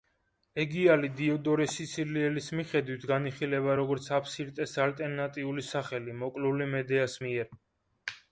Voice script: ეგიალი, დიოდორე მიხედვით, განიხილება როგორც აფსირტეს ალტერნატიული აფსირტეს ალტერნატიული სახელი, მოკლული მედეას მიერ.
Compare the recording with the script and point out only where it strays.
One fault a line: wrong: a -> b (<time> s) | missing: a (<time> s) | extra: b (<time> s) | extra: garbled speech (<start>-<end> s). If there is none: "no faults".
extra: სიცილიელის (1.7 s)
missing: აფსირტეს ალტერნატიული (5.7 s)